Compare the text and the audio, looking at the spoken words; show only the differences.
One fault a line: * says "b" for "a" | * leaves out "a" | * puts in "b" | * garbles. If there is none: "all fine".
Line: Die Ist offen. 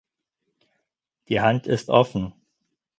* puts in "Hand"